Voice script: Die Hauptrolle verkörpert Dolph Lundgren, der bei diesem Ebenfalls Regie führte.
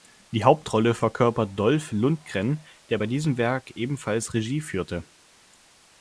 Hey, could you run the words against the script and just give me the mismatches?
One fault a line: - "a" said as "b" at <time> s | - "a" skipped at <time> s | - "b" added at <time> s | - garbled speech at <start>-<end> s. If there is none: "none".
- "Werk" added at 3.4 s